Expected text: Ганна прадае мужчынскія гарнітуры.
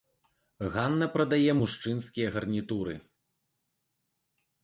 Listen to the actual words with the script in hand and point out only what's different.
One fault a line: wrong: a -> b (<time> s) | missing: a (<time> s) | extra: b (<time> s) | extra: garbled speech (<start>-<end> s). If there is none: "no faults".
no faults